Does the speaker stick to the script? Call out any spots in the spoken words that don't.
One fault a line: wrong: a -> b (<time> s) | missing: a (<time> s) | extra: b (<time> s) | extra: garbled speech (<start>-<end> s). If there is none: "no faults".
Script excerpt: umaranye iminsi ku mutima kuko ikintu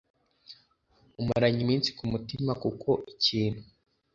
no faults